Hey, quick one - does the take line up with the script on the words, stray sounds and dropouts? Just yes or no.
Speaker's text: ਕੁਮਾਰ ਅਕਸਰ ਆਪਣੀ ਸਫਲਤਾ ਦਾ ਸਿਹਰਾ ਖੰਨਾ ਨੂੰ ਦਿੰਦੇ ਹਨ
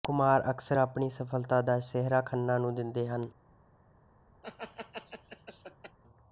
no